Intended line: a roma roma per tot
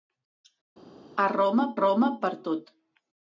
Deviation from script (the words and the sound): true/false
false